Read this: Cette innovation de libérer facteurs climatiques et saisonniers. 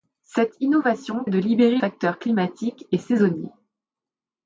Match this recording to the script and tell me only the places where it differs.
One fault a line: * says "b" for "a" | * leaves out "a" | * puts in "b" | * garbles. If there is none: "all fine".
all fine